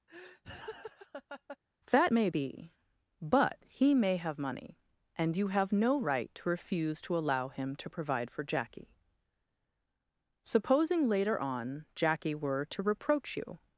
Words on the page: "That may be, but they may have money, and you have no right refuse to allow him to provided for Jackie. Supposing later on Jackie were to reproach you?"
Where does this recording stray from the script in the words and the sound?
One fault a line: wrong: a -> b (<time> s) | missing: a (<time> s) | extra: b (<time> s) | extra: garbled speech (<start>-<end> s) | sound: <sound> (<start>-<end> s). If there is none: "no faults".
sound: laugh (0.1-1.6 s)
wrong: they -> he (3.7 s)
extra: to (6.3 s)
wrong: provided -> provide (7.9 s)